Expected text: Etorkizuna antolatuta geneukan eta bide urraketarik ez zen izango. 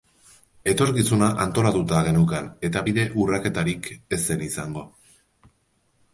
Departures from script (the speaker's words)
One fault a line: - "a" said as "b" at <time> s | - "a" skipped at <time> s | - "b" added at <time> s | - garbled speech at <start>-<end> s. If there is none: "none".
none